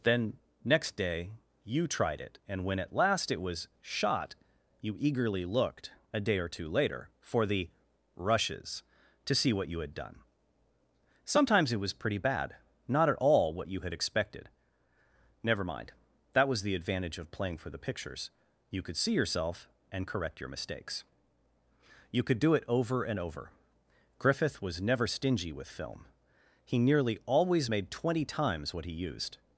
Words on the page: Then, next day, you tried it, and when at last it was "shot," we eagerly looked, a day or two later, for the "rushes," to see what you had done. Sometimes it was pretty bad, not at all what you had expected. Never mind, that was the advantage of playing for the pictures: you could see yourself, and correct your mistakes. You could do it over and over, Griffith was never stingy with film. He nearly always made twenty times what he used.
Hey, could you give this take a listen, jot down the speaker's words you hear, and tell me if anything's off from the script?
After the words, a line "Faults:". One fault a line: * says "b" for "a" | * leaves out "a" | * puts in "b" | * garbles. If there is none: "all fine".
Then, next day, you tried it, and when at last it was "shot," you eagerly looked, a day or two later, for the "rushes," to see what you had done. Sometimes it was pretty bad, not at all what you had expected. Never mind, that was the advantage of playing for the pictures: you could see yourself, and correct your mistakes. You could do it over and over, Griffith was never stingy with film. He nearly always made twenty times what he used.
Faults:
* says "you" for "we"